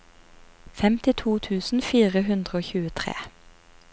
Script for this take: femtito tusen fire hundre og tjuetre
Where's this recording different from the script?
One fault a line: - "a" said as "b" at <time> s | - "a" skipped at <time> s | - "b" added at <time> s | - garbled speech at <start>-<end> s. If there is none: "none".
none